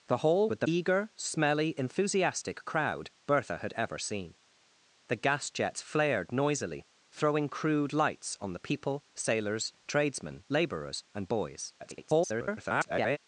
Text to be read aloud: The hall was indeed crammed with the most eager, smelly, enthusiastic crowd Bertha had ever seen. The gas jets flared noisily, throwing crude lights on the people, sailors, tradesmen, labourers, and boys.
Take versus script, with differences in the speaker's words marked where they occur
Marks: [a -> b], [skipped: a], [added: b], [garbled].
The hall [skipped: was indeed crammed] with the [skipped: most] eager, smelly, enthusiastic crowd Bertha had ever seen. The gas jets flared noisily, throwing crude lights on the people, sailors, tradesmen, labourers, and boys. [garbled]